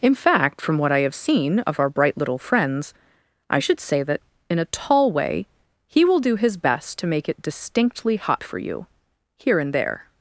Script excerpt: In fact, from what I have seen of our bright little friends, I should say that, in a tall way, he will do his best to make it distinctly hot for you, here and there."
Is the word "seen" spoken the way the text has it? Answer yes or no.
yes